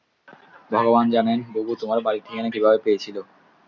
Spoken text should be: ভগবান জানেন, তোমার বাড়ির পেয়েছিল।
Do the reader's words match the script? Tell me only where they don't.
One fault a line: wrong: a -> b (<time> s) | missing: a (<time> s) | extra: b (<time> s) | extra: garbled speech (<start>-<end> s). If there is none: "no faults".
extra: বুবু (1.5 s)
extra: ঠিকানা কীভাবে (2.2 s)